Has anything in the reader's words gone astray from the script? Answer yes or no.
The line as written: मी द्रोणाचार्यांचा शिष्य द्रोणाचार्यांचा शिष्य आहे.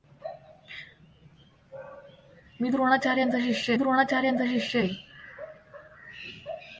no